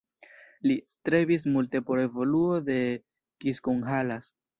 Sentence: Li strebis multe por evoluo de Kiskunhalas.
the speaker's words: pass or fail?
pass